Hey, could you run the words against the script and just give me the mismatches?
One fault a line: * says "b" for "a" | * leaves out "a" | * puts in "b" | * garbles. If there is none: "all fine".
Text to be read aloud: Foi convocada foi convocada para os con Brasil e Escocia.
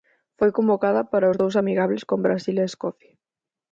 * says "para os dous amigables" for "foi convocada para os"